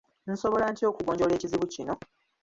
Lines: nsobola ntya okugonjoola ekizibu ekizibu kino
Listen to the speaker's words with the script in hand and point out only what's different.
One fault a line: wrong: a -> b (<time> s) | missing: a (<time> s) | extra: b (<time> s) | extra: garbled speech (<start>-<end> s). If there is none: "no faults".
missing: ekizibu (1.7 s)